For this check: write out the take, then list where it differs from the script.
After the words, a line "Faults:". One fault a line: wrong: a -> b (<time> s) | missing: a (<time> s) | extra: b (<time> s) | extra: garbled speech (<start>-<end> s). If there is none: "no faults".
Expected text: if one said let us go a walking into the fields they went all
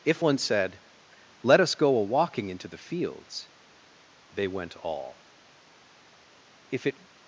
if one said let us go a walking into the fields they went all if it
Faults:
extra: if it (6.7 s)